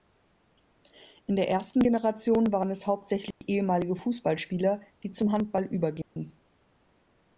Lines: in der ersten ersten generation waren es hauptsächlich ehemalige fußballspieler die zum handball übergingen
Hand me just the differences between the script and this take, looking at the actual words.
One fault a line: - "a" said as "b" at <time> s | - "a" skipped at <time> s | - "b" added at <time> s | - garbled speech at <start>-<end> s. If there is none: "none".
- "ersten" skipped at 1.8 s